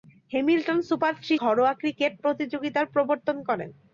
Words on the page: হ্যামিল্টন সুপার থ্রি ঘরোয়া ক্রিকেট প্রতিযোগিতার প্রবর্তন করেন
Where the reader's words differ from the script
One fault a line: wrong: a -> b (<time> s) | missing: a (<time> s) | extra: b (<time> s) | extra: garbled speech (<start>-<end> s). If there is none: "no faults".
no faults